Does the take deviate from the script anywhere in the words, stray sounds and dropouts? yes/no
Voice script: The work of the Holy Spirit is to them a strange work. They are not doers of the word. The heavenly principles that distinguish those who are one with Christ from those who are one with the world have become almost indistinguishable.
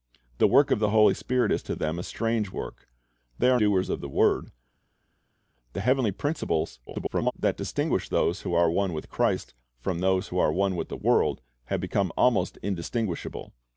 yes